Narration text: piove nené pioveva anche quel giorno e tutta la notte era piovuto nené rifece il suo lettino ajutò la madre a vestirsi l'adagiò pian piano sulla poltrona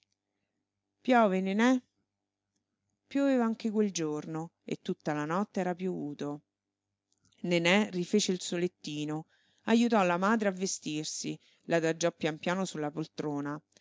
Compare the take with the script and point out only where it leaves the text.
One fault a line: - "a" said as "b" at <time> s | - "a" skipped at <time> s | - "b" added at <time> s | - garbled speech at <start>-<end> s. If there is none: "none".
none